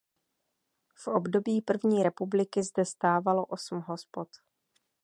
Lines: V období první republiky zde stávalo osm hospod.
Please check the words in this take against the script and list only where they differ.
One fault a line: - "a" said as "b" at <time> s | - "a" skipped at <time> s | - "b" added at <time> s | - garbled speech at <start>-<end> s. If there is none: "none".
none